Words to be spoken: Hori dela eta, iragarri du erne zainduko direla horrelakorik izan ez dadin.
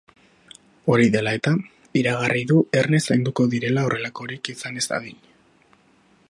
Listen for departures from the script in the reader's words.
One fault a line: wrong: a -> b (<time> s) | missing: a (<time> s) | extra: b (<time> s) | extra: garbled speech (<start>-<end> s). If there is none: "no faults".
no faults